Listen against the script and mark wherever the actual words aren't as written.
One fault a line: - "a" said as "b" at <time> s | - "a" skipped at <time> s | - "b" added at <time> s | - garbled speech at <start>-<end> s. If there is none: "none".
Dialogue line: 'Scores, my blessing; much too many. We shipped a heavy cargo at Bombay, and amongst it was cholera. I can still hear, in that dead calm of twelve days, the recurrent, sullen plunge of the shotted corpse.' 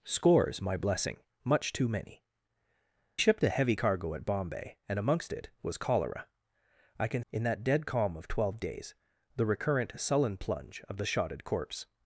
- "We" skipped at 2.2 s
- "still hear" skipped at 7.2 s